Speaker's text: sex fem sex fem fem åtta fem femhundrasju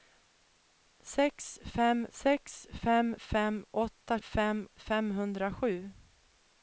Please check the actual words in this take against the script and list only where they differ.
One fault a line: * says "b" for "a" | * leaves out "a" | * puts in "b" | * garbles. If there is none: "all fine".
all fine